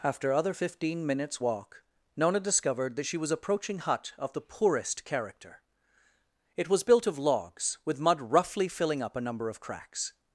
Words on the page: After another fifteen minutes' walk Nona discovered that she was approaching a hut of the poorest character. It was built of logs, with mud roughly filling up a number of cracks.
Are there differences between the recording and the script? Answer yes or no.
yes